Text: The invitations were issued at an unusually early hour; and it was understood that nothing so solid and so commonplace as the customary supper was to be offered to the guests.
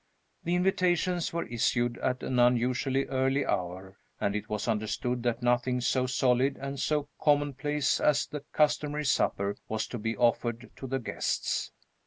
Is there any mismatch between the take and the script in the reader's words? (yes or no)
no